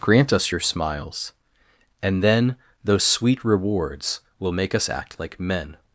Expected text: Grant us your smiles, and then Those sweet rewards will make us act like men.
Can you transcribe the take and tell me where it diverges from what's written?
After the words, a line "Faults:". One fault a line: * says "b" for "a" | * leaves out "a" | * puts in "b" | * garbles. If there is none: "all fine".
Grant us your smiles, and then Those sweet rewards will make us act like men.
Faults:
all fine